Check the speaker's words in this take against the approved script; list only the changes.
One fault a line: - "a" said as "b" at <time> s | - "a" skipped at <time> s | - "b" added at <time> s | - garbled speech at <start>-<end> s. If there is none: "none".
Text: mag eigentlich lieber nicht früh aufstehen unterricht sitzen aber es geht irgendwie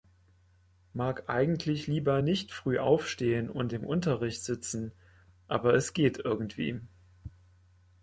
- "und im" added at 3.5 s